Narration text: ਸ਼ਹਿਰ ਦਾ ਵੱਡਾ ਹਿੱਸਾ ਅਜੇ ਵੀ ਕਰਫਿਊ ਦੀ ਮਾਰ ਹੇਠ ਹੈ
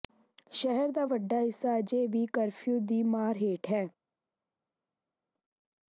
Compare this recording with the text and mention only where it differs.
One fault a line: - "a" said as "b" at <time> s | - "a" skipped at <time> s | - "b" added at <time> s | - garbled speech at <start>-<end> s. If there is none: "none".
none